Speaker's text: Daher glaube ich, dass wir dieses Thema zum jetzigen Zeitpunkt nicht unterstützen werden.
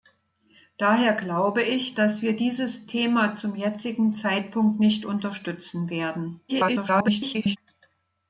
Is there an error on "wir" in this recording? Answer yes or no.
no